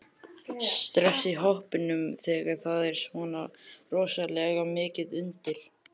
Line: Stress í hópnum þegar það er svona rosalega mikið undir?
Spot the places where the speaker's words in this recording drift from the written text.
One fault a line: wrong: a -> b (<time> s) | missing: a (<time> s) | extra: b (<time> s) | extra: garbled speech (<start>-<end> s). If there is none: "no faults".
no faults